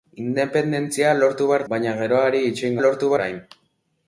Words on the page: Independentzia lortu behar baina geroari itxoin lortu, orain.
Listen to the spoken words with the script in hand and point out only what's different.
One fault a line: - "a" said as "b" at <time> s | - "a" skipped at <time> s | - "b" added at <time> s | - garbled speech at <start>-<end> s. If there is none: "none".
none